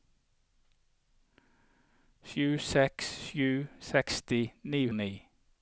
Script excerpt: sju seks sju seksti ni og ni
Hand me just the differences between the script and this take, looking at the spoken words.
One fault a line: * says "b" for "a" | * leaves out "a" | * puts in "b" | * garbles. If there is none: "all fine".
all fine